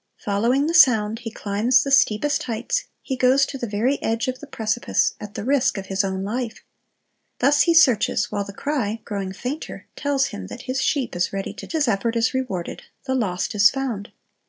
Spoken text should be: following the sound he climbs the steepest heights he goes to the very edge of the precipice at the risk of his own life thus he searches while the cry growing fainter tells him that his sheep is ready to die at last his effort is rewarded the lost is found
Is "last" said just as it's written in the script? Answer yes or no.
no